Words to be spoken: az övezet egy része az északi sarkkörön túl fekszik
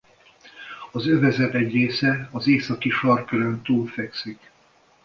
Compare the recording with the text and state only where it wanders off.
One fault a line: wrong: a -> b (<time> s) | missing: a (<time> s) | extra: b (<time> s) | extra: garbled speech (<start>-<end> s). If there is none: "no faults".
no faults